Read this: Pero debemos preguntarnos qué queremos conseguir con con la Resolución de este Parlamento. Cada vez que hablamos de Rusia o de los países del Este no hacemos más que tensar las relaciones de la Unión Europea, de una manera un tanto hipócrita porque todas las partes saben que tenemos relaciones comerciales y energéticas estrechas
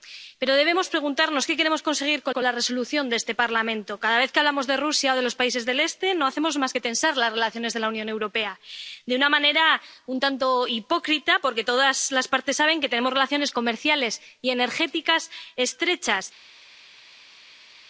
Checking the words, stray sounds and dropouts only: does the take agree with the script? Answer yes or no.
yes